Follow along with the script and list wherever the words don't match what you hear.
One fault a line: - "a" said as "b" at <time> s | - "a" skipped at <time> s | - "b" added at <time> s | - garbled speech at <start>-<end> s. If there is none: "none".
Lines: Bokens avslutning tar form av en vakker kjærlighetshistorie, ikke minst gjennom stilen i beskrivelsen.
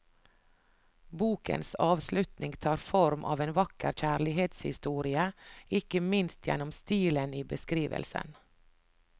none